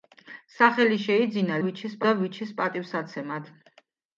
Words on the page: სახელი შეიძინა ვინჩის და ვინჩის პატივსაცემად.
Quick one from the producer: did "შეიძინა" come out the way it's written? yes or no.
yes